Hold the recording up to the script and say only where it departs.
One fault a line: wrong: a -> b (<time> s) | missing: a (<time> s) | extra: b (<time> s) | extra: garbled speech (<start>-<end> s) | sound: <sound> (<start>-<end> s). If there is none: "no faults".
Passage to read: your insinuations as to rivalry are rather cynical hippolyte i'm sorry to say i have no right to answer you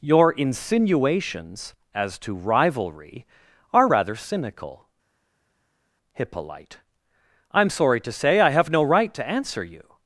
no faults